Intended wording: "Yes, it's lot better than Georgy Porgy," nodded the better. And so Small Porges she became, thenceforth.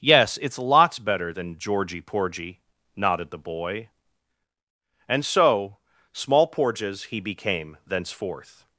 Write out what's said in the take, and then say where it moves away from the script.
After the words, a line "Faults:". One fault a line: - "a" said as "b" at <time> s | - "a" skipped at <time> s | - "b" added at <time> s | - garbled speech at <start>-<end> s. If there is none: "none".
"Yes, it's lots better than Georgy Porgy," nodded the boy. And so Small Porges he became, thenceforth.
Faults:
- "lot" said as "lots" at 0.6 s
- "better" said as "boy" at 3.4 s
- "she" said as "he" at 7.0 s